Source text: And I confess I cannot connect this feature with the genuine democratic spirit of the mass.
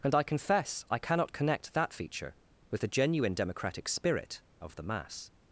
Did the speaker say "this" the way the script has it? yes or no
no